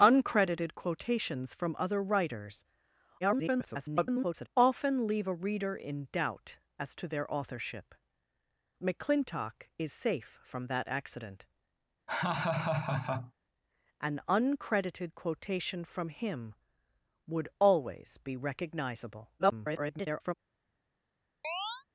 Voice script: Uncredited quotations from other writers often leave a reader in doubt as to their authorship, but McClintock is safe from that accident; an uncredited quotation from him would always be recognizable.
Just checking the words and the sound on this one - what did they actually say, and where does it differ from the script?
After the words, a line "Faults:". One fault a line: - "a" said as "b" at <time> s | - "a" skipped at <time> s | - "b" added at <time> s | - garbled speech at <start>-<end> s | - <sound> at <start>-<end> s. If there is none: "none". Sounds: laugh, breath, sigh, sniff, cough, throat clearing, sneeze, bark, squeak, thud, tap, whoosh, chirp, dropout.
Uncredited quotations from other writers [garbled] often leave a reader in doubt as to their authorship, McClintock is safe from that accident; an uncredited quotation from him would always be recognizable. [garbled]
Faults:
- garbled speech at 3.2-4.5 s
- "but" skipped at 7.9 s
- laugh at 12.1-13.3 s
- garbled speech at 19.4-20.3 s
- chirp at 21.4-21.9 s